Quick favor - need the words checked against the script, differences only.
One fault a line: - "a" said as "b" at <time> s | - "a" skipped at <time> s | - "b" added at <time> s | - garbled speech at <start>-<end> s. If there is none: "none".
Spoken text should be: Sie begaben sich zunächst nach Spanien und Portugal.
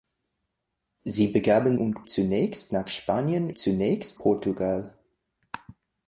- "sich" said as "und" at 1.8 s
- "und" said as "zunächst" at 3.6 s